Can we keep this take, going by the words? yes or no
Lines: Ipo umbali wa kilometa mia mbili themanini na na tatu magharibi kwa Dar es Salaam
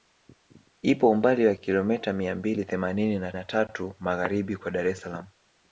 yes